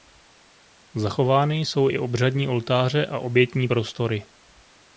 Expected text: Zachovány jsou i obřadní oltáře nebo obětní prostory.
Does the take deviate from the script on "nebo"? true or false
true